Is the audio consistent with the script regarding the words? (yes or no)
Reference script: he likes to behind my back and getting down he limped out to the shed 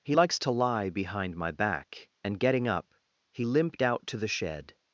no